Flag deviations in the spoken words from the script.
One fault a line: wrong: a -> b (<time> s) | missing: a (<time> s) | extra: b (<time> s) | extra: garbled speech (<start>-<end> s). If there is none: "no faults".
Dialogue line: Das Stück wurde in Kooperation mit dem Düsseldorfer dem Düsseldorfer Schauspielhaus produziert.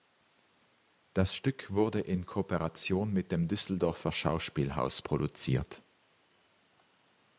missing: dem Düsseldorfer (4.1 s)